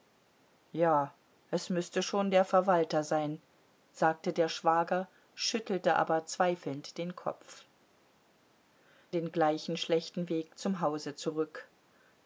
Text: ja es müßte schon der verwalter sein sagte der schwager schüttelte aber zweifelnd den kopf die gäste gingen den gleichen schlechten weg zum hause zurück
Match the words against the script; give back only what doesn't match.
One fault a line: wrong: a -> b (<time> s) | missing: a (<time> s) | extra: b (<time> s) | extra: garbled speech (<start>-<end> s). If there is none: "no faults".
missing: die gäste gingen (7.7 s)